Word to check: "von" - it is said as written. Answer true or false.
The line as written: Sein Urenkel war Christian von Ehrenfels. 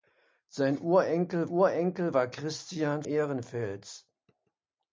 false